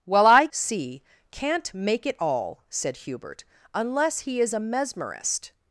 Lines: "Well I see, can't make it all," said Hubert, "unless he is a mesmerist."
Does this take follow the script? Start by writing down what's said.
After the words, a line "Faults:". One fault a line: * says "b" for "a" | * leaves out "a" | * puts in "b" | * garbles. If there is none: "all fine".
"Well I see, can't make it all," said Hubert, "unless he is a mesmerist."
Faults:
all fine